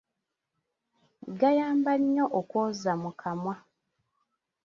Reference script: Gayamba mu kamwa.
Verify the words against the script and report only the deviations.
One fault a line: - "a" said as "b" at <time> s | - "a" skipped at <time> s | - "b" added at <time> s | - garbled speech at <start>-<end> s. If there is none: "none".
- "nnyo okwoza" added at 2.0 s